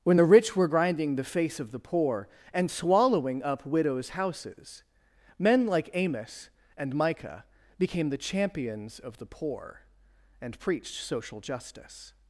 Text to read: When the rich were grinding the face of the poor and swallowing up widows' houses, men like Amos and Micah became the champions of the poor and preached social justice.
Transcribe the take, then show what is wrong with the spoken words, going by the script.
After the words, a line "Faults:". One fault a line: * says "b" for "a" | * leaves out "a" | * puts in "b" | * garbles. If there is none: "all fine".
When the rich were grinding the face of the poor and swallowing up widows' houses, men like Amos and Micah became the champions of the poor and preached social justice.
Faults:
all fine